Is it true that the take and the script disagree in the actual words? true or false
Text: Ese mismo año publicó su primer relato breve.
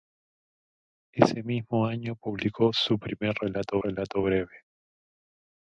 true